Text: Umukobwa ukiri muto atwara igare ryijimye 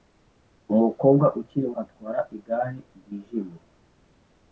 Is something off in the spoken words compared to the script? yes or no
yes